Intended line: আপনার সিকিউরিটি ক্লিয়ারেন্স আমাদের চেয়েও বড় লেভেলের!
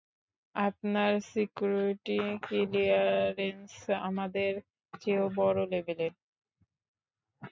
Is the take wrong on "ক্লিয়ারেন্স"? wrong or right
right